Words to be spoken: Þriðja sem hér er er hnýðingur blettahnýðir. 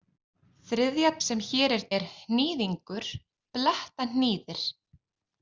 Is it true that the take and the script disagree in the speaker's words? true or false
false